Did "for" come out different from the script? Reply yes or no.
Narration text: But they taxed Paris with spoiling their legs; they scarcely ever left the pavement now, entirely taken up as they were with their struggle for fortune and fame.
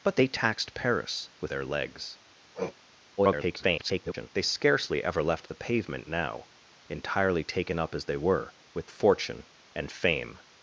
yes